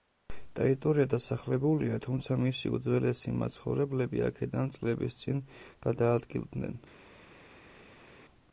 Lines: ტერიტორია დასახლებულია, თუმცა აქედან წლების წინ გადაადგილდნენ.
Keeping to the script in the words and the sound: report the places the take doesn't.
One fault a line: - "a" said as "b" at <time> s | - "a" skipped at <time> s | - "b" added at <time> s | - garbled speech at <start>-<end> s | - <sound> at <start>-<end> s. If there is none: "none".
- "მისი უძველესი მაცხოვრებლები" added at 2.5 s